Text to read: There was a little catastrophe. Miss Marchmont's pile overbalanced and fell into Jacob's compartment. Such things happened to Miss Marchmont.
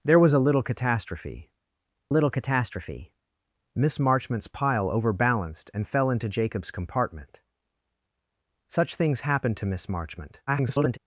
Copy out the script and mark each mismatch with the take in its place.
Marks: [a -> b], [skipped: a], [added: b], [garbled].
There was a little catastrophe. [added: little catastrophe] Miss Marchmont's pile overbalanced and fell into Jacob's compartment. Such things happened to Miss Marchmont. [garbled]